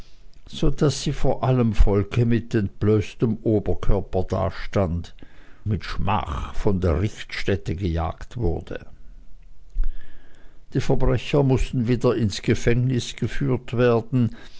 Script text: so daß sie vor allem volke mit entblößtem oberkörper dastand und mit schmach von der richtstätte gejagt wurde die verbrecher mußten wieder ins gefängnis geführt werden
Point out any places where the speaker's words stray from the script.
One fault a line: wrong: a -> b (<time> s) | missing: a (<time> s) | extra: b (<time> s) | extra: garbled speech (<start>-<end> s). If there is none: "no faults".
missing: und (5.1 s)